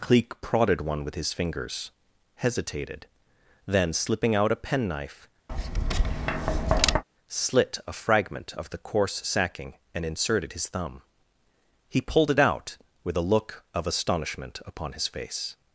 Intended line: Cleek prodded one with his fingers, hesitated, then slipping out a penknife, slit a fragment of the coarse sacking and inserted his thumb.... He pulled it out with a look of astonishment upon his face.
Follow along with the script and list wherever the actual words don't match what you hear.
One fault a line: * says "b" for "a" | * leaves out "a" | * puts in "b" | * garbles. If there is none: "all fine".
all fine